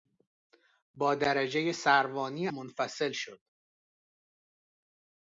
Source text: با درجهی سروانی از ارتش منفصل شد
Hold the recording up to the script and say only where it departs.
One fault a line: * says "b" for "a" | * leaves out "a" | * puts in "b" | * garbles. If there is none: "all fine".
* leaves out "از ارتش"